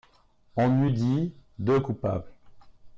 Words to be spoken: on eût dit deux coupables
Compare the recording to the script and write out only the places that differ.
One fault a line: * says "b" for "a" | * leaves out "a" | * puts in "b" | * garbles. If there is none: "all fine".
all fine